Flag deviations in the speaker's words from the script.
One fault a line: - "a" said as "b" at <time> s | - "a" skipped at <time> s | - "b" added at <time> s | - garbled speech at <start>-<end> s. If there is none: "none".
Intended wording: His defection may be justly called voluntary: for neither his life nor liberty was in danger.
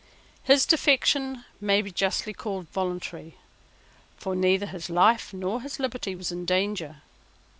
- "his" added at 5.6 s